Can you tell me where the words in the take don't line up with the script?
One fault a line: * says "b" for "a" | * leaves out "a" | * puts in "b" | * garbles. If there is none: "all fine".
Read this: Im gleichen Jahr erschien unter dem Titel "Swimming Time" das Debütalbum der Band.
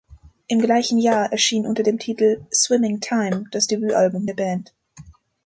all fine